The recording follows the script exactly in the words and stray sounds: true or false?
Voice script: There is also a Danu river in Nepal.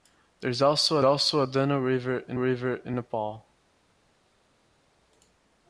false